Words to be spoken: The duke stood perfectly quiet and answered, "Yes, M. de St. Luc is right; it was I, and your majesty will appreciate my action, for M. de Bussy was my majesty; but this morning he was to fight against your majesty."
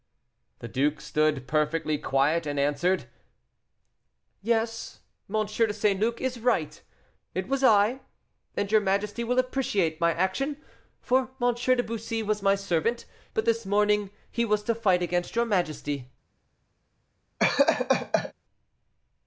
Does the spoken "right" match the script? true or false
true